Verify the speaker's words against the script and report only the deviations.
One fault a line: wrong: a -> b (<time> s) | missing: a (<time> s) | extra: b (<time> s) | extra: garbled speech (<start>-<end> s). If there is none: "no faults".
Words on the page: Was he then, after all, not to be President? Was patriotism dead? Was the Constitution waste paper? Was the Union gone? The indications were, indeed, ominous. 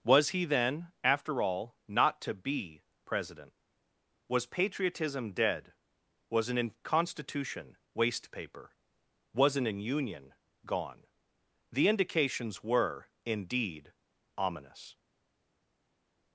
wrong: the -> an (6.5 s)
wrong: the -> an (9.6 s)